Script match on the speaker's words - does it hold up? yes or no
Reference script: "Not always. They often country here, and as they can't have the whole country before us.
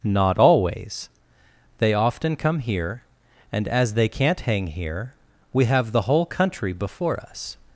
no